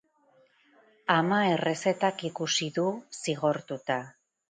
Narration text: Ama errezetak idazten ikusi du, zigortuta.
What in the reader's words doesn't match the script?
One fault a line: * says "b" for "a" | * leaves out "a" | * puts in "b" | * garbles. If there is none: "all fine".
* leaves out "idazten"